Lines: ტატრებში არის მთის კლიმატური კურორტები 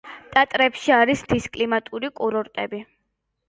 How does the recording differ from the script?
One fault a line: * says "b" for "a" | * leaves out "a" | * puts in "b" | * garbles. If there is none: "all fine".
all fine